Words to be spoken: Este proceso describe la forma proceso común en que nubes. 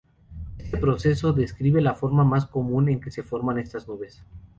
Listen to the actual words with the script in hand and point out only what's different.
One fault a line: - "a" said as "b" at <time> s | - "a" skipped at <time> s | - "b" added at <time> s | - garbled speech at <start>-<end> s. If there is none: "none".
- "proceso" said as "más" at 2.2 s
- "se forman estas" added at 3.1 s